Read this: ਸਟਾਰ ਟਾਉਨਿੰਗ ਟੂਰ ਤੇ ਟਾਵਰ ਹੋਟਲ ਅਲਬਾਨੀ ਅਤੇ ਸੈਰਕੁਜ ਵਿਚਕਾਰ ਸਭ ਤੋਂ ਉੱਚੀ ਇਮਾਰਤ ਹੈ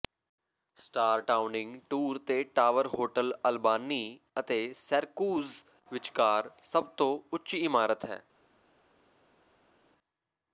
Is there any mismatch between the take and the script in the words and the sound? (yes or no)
no